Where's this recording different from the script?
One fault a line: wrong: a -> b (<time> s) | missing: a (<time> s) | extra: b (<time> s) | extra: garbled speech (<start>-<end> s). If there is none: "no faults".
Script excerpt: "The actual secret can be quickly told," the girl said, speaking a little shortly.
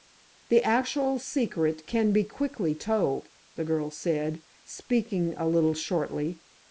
no faults